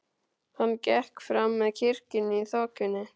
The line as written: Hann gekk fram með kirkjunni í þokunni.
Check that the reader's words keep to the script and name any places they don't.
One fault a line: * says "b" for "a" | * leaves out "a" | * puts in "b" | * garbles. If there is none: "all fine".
all fine